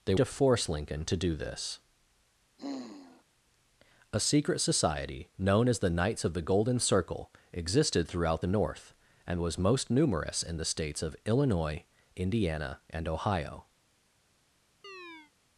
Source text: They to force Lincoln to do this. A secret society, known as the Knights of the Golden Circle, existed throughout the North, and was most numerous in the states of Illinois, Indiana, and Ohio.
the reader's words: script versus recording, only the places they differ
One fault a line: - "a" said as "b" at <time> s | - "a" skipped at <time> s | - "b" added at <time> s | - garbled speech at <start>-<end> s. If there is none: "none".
none